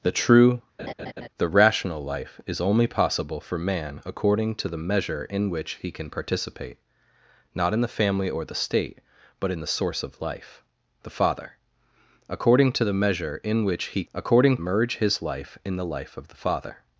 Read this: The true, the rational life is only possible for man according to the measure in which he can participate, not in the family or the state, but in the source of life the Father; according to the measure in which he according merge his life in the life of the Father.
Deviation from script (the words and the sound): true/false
true